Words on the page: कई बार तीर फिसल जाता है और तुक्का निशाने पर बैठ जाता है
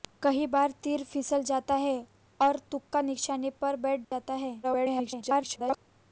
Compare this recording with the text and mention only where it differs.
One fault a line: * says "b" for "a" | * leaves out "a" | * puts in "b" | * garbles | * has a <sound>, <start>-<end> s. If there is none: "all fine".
* has a dropout, 4.0-4.1 s
* garbles